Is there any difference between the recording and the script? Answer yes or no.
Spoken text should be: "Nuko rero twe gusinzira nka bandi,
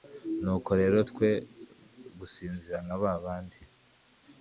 yes